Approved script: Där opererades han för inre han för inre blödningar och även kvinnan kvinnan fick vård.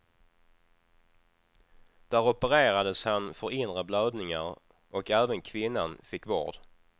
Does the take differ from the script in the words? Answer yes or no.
yes